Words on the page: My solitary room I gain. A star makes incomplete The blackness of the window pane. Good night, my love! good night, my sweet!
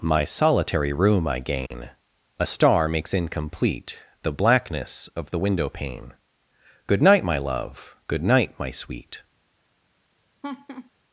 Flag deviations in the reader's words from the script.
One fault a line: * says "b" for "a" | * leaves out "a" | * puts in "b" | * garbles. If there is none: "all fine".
all fine